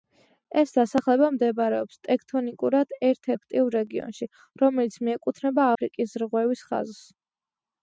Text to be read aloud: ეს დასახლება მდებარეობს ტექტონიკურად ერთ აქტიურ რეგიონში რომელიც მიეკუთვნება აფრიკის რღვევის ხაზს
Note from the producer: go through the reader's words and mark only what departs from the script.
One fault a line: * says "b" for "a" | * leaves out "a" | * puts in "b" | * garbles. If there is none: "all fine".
all fine